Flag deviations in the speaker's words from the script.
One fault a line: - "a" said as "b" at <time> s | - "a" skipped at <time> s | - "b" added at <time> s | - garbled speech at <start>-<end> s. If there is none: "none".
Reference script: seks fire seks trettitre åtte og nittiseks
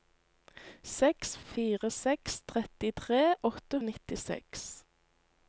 none